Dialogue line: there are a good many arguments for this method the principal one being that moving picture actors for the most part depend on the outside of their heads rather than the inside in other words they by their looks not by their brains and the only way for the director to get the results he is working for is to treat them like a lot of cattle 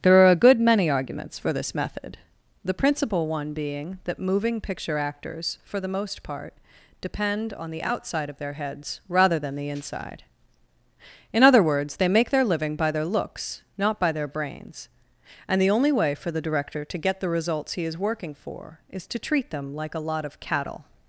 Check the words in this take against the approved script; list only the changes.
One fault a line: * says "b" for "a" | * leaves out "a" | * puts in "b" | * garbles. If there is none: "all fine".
* puts in "make their living"